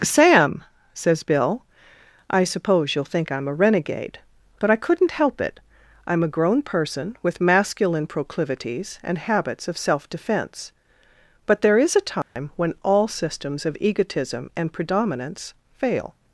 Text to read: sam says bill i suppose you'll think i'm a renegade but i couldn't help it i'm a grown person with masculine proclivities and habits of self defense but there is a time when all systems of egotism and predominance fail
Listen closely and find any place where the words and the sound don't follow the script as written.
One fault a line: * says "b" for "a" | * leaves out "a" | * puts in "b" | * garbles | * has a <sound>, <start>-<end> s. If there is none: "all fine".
* has a dropout, 12.2-12.4 s